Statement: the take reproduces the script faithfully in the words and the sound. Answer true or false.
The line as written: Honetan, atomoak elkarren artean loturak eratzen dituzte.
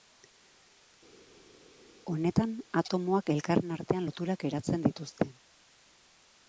true